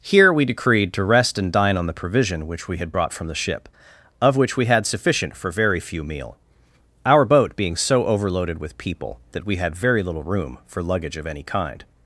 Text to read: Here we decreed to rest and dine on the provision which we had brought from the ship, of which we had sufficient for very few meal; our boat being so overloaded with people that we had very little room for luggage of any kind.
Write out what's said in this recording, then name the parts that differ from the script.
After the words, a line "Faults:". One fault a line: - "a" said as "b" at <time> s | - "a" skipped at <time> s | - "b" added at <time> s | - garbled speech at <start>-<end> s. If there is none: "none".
Here we decreed to rest and dine on the provision which we had brought from the ship, of which we had sufficient for very few meal; our boat being so overloaded with people that we had very little room for luggage of any kind.
Faults:
none